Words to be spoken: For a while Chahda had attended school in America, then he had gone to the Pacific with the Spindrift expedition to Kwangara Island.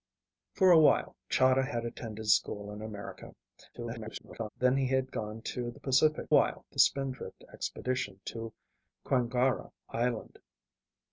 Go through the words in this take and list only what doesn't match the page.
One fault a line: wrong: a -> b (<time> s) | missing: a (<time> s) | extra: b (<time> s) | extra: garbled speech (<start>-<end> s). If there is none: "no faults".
extra: garbled speech (3.7-4.5 s)
wrong: with -> while (6.3 s)